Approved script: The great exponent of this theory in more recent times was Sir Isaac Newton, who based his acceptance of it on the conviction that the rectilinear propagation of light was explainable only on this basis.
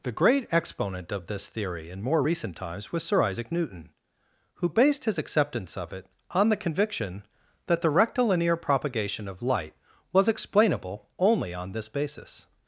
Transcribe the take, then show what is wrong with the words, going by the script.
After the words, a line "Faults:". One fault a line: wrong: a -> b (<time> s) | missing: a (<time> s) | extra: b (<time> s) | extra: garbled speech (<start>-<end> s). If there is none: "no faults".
The great exponent of this theory in more recent times was Sir Isaac Newton, who based his acceptance of it on the conviction that the rectilinear propagation of light was explainable only on this basis.
Faults:
no faults